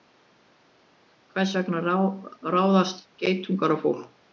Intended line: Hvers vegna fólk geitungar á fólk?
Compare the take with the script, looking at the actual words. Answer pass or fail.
fail